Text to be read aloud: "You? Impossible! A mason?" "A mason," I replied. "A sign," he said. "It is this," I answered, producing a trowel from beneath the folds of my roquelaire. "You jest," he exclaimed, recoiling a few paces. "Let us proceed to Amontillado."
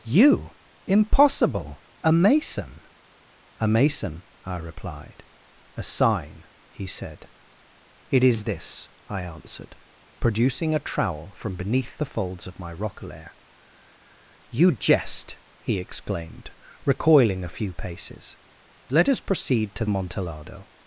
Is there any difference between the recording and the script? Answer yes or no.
no